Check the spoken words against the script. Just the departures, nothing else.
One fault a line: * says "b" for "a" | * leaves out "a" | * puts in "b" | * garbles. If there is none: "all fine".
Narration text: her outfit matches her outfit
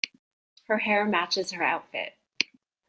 * says "hair" for "outfit"